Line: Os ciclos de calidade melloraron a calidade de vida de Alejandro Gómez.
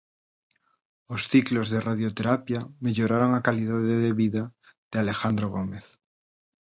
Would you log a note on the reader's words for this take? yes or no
yes